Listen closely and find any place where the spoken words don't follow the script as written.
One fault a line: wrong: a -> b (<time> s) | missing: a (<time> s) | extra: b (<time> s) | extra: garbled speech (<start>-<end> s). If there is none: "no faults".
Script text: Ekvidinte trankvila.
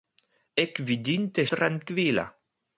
no faults